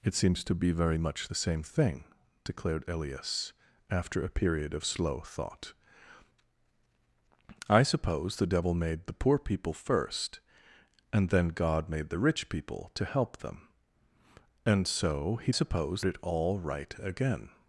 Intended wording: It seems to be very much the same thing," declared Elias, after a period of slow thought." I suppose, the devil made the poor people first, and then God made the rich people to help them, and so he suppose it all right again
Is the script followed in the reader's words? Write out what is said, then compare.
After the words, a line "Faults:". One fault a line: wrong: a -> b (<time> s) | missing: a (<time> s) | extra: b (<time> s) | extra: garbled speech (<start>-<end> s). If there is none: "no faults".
It seems to be very much the same thing," declared Elias, after a period of slow thought." I suppose, the devil made the poor people first, and then God made the rich people to help them, and so he suppose it all right again
Faults:
no faults